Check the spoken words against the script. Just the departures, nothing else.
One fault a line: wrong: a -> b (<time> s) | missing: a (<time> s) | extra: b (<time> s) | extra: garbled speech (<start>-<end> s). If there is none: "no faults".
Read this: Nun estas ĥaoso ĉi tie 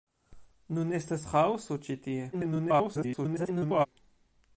extra: garbled speech (2.3-3.9 s)